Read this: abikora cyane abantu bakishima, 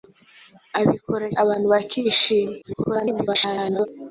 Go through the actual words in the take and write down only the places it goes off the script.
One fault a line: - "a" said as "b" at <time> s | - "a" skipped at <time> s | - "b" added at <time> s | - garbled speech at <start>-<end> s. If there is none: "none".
- "cyane" skipped at 1.3 s
- garbled speech at 2.6-3.9 s